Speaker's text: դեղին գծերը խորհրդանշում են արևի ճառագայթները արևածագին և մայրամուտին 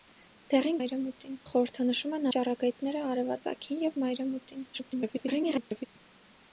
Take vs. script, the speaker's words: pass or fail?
fail